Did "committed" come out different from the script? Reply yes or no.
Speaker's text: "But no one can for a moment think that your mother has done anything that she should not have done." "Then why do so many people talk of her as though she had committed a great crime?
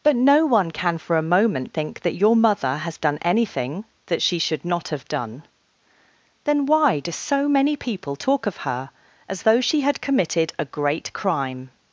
no